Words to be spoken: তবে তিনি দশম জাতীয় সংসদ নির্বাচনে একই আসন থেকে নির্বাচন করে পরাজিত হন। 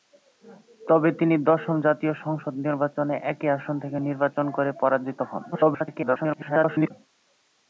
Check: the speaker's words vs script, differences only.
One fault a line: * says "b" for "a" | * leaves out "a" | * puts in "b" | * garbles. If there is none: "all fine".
* garbles